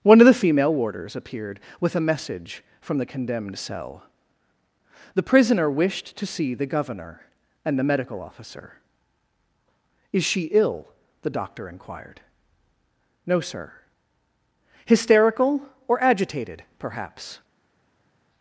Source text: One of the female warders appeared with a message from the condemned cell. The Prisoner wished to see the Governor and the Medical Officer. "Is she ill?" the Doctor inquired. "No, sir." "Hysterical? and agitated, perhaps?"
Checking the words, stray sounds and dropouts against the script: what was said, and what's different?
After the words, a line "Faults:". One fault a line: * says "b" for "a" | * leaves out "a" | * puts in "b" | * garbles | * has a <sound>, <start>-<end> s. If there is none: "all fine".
One of the female warders appeared with a message from the condemned cell. The Prisoner wished to see the Governor and the Medical Officer. "Is she ill?" the Doctor inquired. "No, sir." "Hysterical? or agitated, perhaps?"
Faults:
* says "or" for "and"